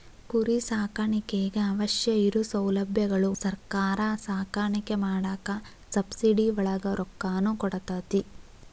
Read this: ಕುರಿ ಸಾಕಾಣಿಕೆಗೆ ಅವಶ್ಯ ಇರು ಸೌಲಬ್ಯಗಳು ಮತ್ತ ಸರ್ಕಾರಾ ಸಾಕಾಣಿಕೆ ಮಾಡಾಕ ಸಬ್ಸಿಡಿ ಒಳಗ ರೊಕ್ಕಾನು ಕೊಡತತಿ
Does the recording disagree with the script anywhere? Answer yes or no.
yes